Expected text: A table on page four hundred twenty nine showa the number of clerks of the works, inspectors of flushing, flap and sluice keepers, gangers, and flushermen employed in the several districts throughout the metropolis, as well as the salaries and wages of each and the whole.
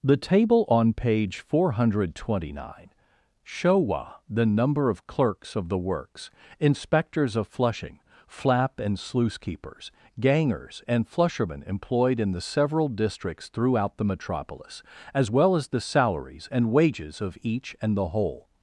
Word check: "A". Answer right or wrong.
wrong